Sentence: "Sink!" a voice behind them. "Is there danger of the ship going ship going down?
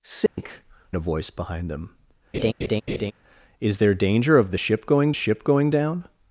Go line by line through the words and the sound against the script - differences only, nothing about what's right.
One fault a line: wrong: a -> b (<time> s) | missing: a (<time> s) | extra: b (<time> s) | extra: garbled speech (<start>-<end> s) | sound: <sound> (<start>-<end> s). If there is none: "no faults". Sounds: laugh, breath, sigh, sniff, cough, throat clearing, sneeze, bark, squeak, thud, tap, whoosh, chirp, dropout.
sound: dropout (0.3-0.4 s)
sound: laugh (2.3-3.1 s)